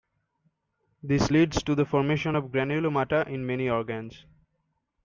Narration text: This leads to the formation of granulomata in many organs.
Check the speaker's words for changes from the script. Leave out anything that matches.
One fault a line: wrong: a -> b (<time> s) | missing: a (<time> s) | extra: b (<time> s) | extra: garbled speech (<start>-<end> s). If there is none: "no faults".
no faults